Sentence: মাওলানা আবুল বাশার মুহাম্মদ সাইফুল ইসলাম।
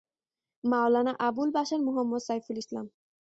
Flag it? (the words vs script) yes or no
no